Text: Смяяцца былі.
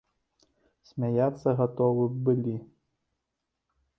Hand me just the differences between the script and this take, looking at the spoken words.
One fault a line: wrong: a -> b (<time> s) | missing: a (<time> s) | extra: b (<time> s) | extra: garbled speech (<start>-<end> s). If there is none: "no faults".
extra: гатовы б (1.6 s)